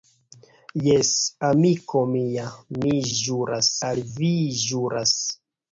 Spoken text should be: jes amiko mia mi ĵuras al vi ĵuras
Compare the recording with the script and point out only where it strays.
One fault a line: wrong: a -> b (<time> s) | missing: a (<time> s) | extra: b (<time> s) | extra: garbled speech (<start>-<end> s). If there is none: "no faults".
no faults